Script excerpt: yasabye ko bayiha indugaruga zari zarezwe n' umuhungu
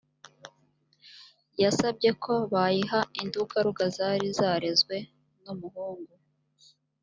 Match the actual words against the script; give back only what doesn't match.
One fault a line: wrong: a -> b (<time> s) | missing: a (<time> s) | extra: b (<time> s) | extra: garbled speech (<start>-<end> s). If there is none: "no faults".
no faults